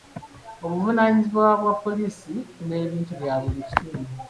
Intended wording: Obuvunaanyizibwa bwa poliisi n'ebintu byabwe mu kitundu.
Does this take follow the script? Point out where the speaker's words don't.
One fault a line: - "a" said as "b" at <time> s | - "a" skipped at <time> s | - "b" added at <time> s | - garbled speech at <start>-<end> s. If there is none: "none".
none